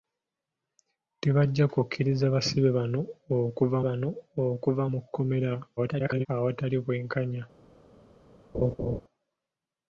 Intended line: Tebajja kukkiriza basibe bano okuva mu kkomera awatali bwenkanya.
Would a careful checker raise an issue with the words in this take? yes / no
yes